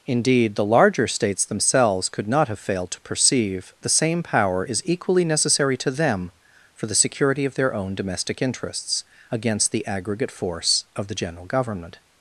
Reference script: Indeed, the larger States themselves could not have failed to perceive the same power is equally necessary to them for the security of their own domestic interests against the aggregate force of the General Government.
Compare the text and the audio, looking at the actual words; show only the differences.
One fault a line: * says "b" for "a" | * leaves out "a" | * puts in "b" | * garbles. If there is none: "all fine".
all fine